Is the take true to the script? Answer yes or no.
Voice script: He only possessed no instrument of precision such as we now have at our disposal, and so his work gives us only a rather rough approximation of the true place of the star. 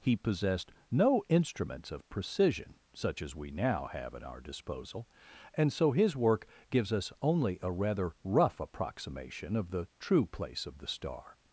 no